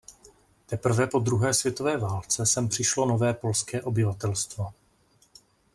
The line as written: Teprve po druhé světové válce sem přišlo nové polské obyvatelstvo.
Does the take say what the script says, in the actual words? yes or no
yes